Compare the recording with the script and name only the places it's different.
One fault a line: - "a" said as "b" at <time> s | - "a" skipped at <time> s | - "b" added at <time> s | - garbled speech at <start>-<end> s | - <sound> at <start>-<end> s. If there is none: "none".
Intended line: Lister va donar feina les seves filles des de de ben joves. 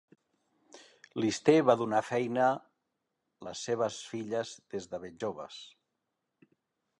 - "de" skipped at 5.0 s